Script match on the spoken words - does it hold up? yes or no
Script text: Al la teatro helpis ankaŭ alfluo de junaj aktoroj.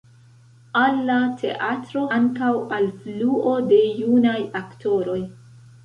no